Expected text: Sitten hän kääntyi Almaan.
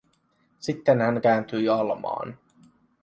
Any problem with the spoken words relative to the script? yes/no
no